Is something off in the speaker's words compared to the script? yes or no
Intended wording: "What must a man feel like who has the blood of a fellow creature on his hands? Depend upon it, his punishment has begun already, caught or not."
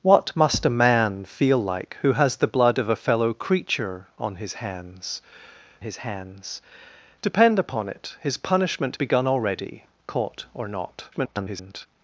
yes